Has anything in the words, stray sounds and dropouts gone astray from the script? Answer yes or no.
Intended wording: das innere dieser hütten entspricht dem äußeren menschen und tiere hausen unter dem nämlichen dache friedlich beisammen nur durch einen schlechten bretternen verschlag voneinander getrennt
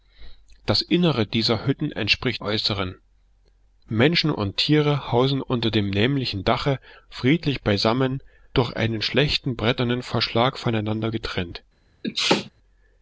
yes